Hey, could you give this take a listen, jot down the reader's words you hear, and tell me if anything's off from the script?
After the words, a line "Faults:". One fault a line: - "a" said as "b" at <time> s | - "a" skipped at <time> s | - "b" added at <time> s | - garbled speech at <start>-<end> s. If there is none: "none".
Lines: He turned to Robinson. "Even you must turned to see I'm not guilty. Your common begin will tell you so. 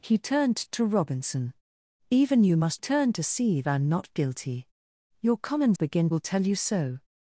He turned to Robinson. "Even you must turned to see I'm not guilty. Your common begin will tell you so.
Faults:
none